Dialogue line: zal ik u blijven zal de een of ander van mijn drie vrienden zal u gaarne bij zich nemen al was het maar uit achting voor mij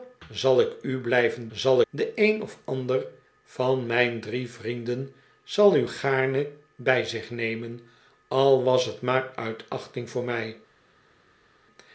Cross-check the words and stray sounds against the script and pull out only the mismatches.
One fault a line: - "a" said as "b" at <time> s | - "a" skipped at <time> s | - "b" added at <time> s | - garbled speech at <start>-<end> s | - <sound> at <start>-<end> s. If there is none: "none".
none